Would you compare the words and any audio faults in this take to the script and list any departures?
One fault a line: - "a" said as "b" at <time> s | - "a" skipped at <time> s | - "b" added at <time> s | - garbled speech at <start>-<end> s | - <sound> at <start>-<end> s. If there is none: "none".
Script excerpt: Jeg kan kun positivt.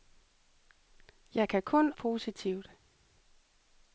none